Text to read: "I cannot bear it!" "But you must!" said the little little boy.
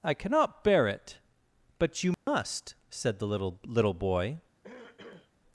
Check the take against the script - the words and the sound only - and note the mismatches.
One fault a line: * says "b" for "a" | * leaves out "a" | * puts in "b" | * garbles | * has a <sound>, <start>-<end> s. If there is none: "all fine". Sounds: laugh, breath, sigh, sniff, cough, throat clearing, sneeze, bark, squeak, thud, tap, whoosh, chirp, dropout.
* has a dropout, 2.1-2.3 s
* has a throat clearing, 4.6-5.3 s